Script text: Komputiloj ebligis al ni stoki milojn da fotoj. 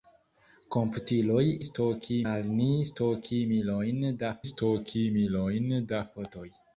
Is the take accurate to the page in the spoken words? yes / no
no